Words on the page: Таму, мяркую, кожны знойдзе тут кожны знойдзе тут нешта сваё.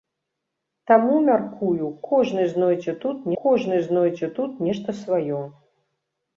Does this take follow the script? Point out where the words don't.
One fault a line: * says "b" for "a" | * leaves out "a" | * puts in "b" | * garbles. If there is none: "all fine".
all fine